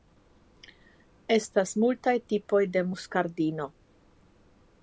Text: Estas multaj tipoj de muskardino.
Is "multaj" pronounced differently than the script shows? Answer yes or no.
no